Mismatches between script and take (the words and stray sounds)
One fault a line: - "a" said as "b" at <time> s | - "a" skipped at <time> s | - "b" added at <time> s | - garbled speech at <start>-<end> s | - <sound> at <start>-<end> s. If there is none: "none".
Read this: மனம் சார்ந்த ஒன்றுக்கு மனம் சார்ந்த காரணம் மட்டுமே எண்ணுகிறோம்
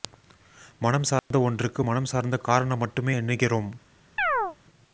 - dropout at 1.2-1.3 s
- chirp at 4.2-4.6 s